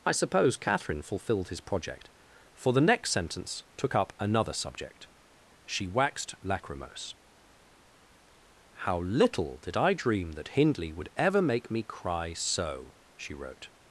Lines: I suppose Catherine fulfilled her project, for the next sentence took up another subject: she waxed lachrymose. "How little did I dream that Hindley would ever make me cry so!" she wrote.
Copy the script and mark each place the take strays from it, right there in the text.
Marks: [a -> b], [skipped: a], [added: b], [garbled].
I suppose Catherine fulfilled [her -> his] project, for the next sentence took up another subject: she waxed lachrymose. "How little did I dream that Hindley would ever make me cry so!" she wrote.